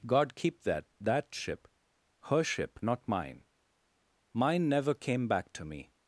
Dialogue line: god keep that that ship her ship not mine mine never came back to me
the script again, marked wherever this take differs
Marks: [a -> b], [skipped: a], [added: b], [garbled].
god keep that that ship her ship not mine mine never came back to me